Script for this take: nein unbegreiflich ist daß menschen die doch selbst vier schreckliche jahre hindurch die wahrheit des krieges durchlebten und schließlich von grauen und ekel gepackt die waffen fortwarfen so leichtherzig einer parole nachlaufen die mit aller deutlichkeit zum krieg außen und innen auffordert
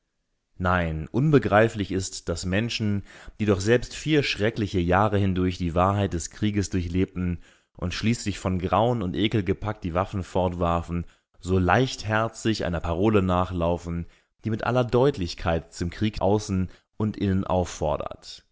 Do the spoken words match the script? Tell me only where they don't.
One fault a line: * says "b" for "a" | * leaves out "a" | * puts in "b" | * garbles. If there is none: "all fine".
all fine